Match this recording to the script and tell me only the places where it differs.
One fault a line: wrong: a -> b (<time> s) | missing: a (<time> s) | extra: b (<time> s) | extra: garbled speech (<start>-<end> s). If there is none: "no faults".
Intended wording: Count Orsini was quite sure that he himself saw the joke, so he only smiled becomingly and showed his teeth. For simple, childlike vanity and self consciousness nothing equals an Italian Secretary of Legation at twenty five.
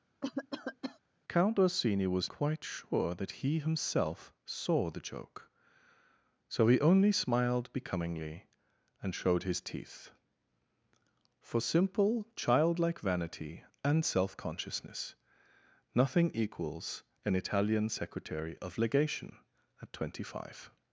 no faults